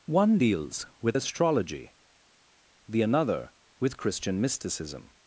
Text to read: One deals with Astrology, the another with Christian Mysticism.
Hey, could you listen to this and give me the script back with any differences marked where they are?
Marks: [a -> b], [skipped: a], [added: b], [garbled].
One deals with Astrology, the another with Christian Mysticism.